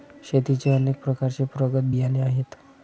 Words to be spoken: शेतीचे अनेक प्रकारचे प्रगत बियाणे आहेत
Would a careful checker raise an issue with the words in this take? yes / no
no